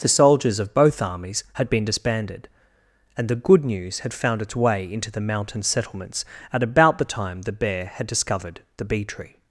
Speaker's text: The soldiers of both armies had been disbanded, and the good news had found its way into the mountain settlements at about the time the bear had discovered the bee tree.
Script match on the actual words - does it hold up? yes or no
yes